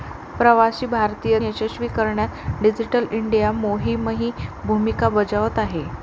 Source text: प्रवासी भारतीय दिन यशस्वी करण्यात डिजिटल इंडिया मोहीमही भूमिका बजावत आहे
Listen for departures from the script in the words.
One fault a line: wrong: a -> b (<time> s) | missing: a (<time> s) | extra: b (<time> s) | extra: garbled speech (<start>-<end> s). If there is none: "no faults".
missing: दिन (1.4 s)